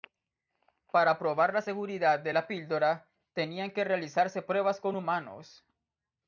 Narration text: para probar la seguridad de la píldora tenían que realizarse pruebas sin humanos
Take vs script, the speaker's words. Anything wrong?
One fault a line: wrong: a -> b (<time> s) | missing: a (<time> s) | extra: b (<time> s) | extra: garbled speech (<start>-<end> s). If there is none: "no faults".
wrong: sin -> con (4.8 s)